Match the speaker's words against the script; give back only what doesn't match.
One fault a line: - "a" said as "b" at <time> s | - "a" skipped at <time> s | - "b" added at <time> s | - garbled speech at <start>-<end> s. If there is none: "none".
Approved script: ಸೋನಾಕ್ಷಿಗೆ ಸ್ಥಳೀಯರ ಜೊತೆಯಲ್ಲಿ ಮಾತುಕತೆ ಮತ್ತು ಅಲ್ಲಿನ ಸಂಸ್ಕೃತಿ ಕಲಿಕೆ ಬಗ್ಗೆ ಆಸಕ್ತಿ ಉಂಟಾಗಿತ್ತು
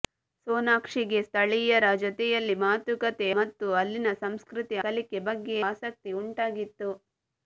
none